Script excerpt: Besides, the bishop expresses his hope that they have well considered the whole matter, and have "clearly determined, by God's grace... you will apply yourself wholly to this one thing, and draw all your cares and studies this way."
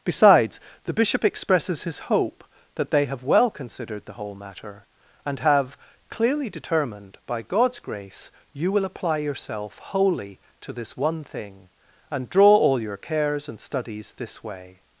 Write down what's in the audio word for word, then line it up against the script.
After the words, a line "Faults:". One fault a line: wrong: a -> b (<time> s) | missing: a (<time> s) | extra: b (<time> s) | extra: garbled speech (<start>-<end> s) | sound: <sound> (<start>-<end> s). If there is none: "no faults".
Besides, the bishop expresses his hope that they have well considered the whole matter, and have "clearly determined, by God's grace... you will apply yourself wholly to this one thing, and draw all your cares and studies this way."
Faults:
no faults